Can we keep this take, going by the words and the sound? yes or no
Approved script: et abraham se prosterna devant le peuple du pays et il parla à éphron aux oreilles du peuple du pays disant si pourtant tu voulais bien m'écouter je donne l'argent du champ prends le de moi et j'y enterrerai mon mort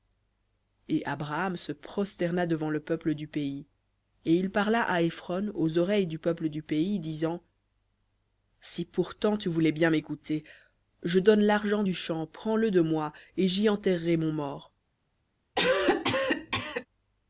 no